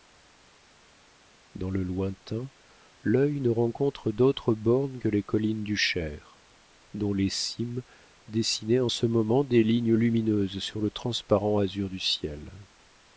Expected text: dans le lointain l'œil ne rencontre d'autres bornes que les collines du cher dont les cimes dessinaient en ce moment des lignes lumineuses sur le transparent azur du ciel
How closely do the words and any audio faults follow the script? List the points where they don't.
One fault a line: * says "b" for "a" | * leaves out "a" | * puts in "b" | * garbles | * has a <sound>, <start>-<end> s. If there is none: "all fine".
all fine